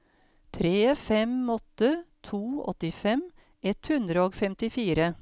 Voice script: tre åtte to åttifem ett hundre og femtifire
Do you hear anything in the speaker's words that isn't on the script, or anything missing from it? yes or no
yes